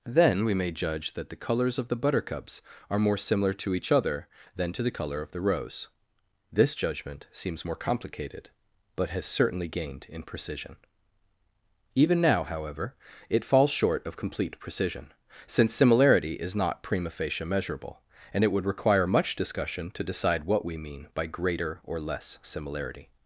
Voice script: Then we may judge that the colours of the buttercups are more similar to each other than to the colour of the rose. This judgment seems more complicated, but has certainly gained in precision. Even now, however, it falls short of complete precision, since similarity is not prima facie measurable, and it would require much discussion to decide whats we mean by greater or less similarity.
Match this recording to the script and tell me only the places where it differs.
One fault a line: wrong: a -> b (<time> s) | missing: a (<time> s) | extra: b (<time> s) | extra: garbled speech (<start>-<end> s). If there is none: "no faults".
wrong: whats -> what (20.4 s)